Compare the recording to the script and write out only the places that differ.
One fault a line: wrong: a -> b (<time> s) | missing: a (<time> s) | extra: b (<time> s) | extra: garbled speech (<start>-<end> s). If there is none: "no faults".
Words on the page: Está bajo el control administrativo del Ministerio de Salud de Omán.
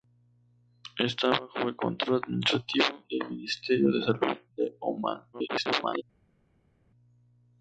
extra: garbled speech (5.3-6.0 s)